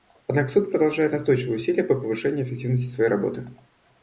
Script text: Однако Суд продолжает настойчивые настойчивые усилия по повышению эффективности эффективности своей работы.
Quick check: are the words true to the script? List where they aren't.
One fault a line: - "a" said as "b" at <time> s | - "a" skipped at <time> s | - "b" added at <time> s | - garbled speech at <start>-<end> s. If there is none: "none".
- "настойчивые" skipped at 1.6 s
- "эффективности" skipped at 2.9 s